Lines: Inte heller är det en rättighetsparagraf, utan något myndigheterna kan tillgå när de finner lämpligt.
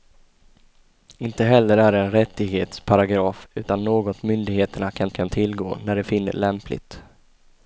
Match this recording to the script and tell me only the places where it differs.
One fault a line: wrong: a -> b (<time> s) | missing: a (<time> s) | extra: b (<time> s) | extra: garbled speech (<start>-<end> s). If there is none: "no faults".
extra: kan (5.1 s)